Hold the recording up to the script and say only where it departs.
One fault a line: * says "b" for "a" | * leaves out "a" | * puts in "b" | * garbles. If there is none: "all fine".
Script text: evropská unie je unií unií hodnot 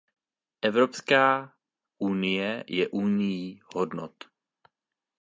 * leaves out "unií"